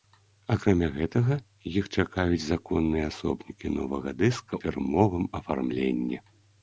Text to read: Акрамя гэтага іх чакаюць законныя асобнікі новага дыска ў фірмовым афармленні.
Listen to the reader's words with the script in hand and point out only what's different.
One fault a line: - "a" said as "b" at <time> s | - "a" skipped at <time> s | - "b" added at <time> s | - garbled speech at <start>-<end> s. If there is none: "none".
- "ў" skipped at 4.5 s